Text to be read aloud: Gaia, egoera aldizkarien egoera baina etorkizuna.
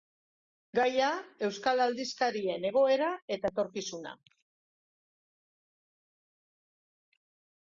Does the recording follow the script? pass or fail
fail